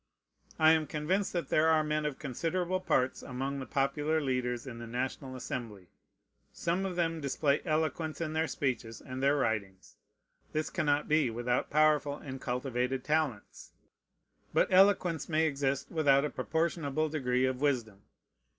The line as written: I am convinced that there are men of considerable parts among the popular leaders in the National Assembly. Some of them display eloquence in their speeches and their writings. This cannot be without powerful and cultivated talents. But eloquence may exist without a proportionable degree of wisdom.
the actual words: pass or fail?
pass